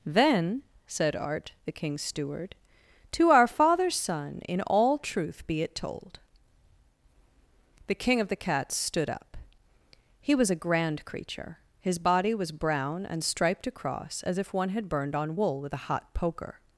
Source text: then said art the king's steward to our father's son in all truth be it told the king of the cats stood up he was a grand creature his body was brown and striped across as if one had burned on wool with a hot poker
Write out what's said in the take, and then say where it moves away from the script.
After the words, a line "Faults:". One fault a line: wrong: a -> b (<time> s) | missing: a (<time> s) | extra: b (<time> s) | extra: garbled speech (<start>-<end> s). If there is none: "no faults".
then said art the king's steward to our father's son in all truth be it told the king of the cats stood up he was a grand creature his body was brown and striped across as if one had burned on wool with a hot poker
Faults:
no faults